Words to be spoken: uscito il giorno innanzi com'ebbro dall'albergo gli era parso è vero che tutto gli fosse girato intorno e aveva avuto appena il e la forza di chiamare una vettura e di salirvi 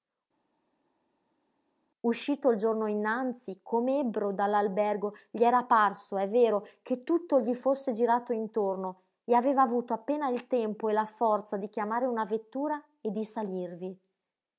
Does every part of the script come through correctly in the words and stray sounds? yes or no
no